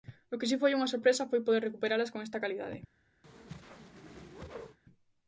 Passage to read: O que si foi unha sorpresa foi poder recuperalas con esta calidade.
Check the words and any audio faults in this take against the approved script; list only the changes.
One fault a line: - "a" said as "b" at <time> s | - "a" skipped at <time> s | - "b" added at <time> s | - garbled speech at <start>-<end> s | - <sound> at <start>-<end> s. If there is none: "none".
- whoosh at 3.2-4.8 s